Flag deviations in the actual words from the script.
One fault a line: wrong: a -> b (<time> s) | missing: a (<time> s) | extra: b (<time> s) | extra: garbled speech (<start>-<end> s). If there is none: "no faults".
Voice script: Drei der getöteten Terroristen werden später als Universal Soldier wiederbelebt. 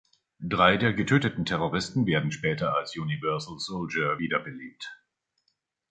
no faults